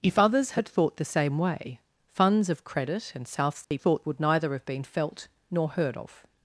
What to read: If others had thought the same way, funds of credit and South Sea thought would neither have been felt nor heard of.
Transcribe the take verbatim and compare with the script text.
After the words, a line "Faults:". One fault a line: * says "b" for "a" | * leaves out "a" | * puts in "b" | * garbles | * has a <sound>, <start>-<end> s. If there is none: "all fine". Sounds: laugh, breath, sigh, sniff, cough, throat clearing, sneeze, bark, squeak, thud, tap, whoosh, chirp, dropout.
If others had thought the same way, funds of credit and South Sea thought would neither have been felt nor heard of.
Faults:
* has a dropout, 3.6-3.7 s